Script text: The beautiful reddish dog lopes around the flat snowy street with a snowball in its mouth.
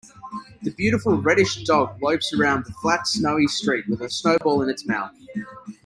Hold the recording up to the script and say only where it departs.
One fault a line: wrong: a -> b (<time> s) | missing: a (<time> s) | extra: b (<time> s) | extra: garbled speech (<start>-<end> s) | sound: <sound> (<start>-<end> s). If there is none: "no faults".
sound: dropout (4.4-4.4 s)